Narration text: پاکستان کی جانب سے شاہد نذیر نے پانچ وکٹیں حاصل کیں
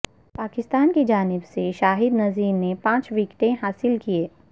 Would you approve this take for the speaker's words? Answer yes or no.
yes